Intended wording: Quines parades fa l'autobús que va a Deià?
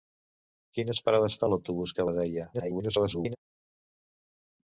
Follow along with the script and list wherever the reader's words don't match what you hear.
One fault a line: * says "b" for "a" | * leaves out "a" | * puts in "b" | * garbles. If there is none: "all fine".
* leaves out "va"
* garbles